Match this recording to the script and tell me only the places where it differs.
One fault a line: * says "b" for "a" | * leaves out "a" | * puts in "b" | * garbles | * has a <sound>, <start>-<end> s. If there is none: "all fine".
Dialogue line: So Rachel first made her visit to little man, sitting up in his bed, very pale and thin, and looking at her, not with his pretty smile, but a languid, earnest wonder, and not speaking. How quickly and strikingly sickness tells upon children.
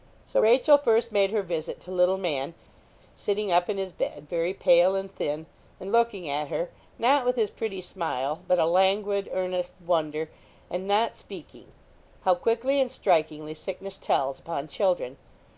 all fine